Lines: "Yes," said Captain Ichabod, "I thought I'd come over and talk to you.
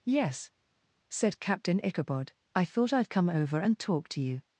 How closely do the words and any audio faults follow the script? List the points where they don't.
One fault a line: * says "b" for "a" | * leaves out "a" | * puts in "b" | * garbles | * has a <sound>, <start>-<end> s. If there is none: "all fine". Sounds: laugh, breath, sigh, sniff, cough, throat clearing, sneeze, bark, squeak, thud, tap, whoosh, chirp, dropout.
all fine